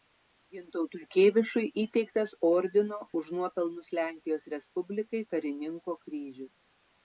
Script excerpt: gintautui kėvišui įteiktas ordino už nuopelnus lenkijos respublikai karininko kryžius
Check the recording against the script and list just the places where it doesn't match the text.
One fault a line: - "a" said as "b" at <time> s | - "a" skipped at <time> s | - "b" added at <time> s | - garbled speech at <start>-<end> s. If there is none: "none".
none